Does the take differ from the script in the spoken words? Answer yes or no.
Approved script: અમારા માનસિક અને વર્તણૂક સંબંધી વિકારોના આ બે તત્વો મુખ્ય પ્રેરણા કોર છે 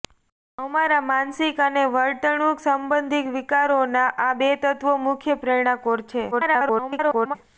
yes